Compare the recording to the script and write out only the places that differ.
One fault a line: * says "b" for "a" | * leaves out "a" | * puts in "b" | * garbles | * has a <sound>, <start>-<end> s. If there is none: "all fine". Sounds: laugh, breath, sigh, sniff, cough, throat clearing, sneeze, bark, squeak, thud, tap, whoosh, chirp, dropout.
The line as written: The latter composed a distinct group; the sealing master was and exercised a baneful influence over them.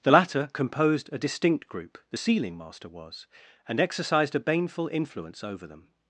all fine